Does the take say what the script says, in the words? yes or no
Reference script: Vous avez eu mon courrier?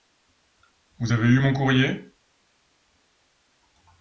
yes